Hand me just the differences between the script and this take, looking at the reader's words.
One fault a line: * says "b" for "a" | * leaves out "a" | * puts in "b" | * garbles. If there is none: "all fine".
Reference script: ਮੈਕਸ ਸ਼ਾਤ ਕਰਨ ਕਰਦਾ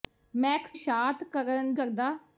all fine